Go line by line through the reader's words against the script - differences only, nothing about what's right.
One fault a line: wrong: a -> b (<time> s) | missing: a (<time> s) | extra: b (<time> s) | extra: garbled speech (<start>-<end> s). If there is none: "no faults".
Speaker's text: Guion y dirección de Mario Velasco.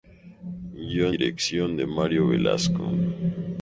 missing: y (1.1 s)